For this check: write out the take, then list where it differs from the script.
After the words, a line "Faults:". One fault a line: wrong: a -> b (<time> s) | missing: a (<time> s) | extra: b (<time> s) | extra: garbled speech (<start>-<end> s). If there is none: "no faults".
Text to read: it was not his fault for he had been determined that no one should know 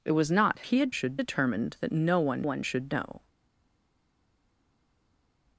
it was not he had should determined that no one one should know
Faults:
missing: his fault for (0.7 s)
wrong: been -> should (0.9 s)
extra: one (2.4 s)